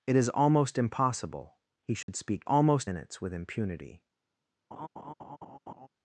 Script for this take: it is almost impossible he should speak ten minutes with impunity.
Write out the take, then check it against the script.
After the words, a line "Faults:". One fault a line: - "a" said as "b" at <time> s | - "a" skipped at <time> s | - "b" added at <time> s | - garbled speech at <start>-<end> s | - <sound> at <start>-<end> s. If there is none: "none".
it is almost impossible he should speak almost minutes with impunity.
Faults:
- dropout at 2.0-2.1 s
- "ten" said as "almost" at 2.4 s
- laugh at 4.7-5.9 s